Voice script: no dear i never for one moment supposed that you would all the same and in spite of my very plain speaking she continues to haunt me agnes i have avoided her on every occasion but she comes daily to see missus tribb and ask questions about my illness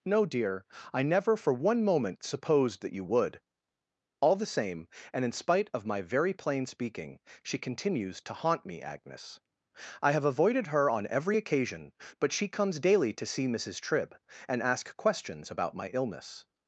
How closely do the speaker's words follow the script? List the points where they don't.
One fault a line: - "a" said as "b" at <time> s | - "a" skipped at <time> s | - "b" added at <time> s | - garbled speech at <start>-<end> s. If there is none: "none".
none